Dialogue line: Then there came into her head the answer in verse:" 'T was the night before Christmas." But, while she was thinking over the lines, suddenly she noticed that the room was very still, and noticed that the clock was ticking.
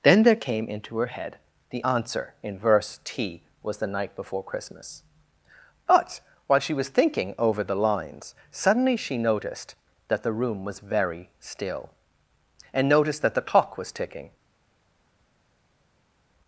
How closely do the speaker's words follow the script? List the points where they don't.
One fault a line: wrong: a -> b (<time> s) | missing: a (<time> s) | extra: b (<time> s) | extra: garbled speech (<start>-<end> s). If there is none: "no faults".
no faults